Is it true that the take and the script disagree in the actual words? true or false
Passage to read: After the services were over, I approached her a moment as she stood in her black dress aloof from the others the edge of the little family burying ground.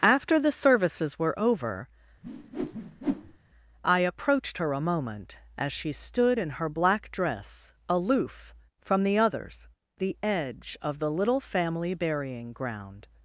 false